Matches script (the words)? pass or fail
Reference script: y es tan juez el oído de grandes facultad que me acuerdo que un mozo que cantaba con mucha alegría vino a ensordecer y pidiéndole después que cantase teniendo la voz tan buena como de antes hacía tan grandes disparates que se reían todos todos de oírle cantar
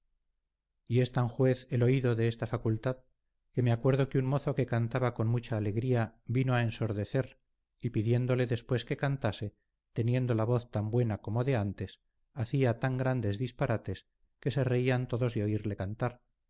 fail